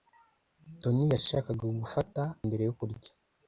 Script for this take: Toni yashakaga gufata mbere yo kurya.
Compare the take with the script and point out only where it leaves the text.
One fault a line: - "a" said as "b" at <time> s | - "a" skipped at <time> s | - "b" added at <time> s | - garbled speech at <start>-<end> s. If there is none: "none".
none